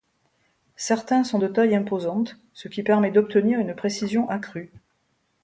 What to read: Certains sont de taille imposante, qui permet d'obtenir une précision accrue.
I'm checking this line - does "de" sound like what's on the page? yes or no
yes